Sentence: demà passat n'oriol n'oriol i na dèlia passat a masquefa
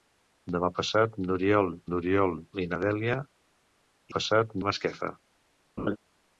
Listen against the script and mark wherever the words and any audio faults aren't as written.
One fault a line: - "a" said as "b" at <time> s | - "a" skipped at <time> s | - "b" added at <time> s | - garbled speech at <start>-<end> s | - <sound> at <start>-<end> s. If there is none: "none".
- laugh at 5.8-6.0 s